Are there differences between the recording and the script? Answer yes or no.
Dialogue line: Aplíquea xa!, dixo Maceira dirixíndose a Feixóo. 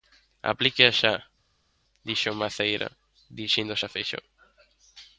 no